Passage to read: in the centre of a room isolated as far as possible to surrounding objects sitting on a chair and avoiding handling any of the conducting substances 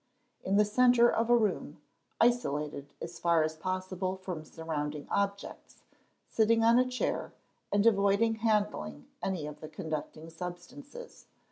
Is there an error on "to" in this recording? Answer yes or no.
yes